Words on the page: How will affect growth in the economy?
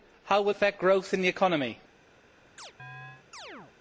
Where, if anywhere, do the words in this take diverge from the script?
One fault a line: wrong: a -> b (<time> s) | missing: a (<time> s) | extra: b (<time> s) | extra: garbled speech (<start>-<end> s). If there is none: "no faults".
no faults